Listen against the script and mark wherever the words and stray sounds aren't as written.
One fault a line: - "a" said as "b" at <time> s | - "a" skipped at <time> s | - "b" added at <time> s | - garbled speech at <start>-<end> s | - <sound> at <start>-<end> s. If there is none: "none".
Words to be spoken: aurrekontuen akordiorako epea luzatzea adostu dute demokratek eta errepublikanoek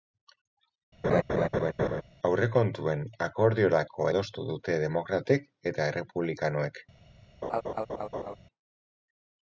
- laugh at 1.0-2.0 s
- "epea luzatzea" skipped at 4.1 s
- laugh at 7.4-8.4 s